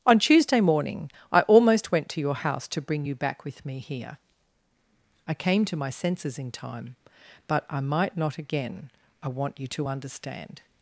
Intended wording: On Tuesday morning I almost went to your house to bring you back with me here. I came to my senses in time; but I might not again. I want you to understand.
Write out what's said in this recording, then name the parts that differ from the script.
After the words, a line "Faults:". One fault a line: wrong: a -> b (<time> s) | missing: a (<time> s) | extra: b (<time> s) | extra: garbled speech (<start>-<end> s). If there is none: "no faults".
On Tuesday morning I almost went to your house to bring you back with me here. I came to my senses in time; but I might not again. I want you to understand.
Faults:
no faults